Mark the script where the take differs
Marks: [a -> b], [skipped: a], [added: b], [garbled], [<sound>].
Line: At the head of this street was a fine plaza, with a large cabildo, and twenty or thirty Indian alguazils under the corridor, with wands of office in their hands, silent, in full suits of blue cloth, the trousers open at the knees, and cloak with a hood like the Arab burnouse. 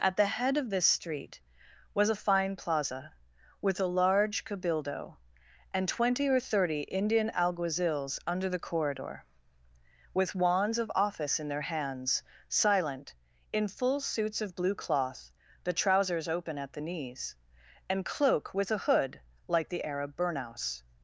At the head of this street was a fine plaza, with a large cabildo, and twenty or thirty Indian alguazils under the corridor, with wands of office in their hands, silent, in full suits of blue cloth, the trousers open at the knees, and cloak with a hood like the Arab burnouse.